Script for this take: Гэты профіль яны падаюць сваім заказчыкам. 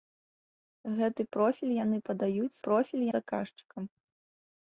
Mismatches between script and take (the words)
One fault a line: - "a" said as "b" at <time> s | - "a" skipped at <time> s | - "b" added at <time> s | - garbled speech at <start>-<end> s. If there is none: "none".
- "сваім" said as "профіль" at 2.7 s